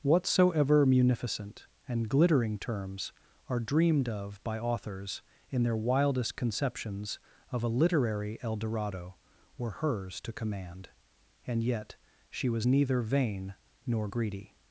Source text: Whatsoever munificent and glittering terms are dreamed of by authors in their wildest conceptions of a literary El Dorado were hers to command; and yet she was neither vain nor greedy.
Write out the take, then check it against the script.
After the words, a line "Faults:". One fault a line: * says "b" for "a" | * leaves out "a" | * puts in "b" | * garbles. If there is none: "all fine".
Whatsoever munificent and glittering terms are dreamed of by authors in their wildest conceptions of a literary El Dorado were hers to command; and yet she was neither vain nor greedy.
Faults:
all fine